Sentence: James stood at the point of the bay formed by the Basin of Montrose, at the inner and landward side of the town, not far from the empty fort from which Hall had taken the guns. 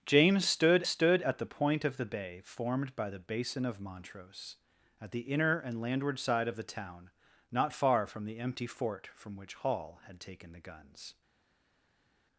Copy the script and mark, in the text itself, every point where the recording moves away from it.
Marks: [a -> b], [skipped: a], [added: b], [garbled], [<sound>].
James stood [added: stood] at the point of the bay formed by the Basin of Montrose, at the inner and landward side of the town, not far from the empty fort from which Hall had taken the guns.